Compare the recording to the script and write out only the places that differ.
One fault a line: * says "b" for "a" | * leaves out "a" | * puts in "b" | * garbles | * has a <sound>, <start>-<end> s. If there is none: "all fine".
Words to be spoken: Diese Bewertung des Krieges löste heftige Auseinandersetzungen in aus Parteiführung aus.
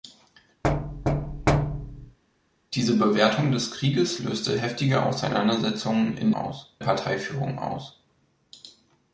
* has a thud, 0.6-2.2 s